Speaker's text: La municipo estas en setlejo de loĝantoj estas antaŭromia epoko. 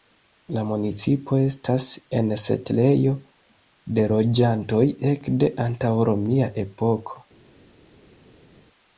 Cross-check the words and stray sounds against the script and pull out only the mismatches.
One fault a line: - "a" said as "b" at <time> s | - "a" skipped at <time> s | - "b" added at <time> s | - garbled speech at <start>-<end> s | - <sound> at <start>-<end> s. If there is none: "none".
- "estas" said as "ekde" at 5.1 s